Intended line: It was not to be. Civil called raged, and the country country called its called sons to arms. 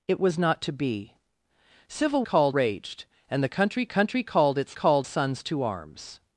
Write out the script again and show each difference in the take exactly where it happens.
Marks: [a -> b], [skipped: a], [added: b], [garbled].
It was not to be. Civil called raged, and the country country called its called sons to arms.